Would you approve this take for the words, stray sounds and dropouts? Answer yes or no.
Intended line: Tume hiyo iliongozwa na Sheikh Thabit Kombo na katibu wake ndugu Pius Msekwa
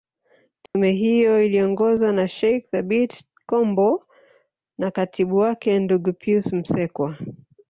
no